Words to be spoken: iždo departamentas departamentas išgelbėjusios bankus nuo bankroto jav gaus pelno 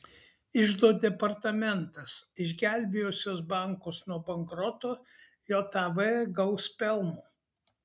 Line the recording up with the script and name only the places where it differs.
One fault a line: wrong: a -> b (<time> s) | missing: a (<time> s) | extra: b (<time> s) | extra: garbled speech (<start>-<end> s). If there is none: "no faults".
missing: departamentas (2.1 s)